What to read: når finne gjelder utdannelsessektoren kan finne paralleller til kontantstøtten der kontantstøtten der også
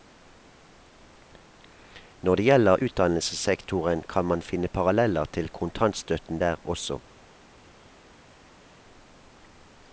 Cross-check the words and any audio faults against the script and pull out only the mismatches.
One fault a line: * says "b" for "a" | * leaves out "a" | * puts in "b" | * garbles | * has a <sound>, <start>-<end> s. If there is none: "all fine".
* says "det" for "finne"
* puts in "man"
* leaves out "kontantstøtten der"